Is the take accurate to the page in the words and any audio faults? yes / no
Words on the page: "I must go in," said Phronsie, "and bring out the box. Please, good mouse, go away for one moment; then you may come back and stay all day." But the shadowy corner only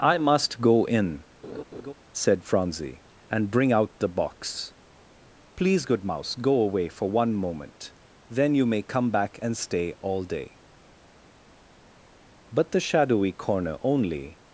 no